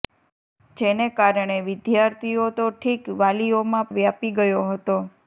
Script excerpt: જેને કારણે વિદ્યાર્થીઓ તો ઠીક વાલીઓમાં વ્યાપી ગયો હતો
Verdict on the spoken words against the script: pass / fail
pass